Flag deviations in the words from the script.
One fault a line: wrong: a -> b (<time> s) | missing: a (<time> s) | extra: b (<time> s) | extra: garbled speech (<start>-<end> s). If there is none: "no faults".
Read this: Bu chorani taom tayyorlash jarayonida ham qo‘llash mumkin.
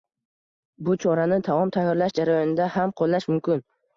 no faults